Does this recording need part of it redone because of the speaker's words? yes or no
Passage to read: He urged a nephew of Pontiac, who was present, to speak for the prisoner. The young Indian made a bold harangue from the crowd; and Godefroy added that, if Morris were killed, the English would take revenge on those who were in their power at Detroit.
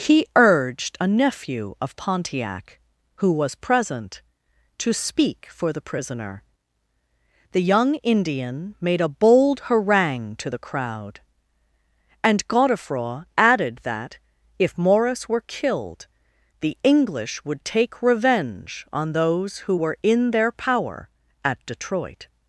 yes